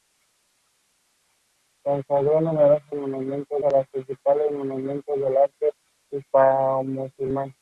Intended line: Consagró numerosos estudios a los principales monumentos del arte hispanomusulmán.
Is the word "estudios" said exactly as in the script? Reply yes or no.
no